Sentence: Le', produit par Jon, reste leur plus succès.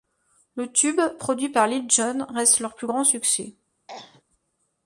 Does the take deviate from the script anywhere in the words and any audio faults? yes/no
yes